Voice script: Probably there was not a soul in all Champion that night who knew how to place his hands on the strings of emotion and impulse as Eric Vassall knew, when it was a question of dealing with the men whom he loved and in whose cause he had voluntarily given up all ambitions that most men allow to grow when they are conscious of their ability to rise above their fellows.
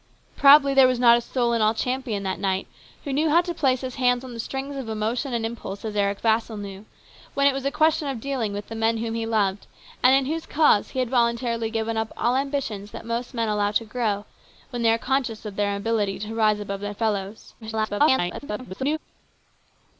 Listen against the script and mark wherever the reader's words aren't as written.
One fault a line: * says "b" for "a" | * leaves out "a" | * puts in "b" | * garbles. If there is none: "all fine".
* garbles